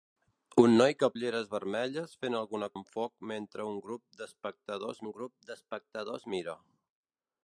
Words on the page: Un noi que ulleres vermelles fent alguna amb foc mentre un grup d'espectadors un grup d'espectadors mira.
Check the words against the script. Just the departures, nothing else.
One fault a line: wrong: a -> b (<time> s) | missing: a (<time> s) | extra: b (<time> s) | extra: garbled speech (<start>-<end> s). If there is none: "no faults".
no faults